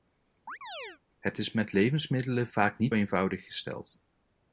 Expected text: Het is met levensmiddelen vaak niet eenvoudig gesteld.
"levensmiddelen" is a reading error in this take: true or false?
false